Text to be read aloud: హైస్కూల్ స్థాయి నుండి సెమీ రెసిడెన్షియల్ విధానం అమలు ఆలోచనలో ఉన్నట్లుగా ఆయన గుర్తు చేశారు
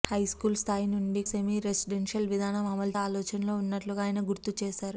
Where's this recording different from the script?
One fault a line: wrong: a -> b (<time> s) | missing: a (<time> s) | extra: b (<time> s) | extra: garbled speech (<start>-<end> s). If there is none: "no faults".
no faults